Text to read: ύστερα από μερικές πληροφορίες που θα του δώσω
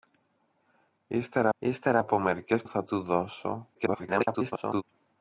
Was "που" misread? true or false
true